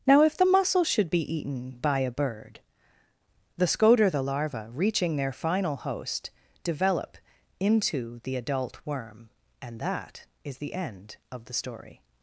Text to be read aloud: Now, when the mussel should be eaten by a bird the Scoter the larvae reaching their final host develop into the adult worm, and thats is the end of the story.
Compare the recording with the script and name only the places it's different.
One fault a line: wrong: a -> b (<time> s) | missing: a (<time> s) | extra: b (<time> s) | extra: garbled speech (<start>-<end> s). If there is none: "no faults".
wrong: when -> if (0.2 s)
wrong: thats -> that (9.8 s)